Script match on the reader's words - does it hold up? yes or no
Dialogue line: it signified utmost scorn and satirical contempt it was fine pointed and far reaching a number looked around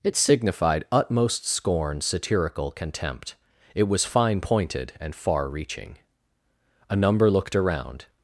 no